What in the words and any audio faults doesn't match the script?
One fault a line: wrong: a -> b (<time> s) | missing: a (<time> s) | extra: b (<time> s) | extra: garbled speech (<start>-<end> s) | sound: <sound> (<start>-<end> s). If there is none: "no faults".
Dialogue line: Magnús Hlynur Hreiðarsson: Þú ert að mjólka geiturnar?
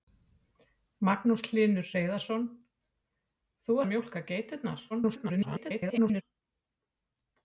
missing: ert (3.8 s)
extra: garbled speech (4.9-6.2 s)